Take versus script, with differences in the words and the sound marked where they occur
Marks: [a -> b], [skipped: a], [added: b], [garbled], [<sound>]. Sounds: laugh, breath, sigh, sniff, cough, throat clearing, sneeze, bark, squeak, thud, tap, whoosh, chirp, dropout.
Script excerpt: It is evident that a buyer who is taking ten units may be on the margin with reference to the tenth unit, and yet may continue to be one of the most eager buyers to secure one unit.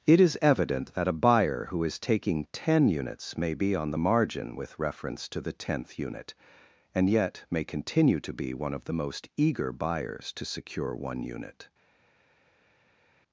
It is evident that a buyer who is taking ten units may be on the margin with reference to the tenth unit, and yet may continue to be one of the most eager buyers to secure one unit.